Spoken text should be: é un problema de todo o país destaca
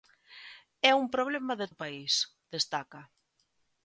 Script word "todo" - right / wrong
wrong